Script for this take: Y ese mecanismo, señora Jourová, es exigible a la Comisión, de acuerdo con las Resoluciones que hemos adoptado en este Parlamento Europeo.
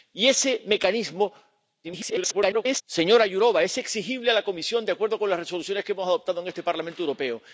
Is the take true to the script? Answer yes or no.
no